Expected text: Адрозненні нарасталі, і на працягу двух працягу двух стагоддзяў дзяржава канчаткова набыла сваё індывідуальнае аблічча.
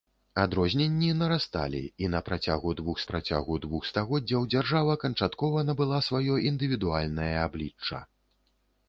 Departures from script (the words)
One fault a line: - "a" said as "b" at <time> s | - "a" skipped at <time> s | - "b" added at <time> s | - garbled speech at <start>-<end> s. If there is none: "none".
none